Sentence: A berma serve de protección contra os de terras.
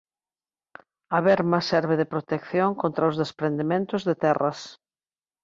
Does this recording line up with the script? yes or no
no